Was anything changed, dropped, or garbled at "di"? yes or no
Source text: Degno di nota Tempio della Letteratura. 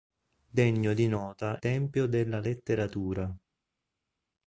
no